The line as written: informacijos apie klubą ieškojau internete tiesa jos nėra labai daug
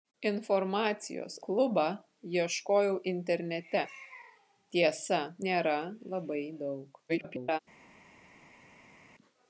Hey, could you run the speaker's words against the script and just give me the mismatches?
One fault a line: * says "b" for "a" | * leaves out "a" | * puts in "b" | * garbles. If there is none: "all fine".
* leaves out "apie"
* leaves out "jos"
* garbles